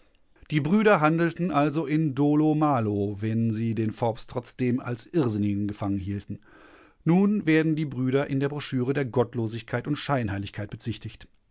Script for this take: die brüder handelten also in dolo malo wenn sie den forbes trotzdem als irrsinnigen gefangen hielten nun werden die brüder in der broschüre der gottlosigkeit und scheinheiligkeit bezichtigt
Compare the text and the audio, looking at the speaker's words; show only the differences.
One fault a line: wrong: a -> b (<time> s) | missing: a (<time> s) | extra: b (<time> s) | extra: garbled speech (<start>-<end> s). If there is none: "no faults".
no faults